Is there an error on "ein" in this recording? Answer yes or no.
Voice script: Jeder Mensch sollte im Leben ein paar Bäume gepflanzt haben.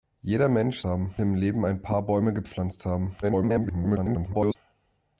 no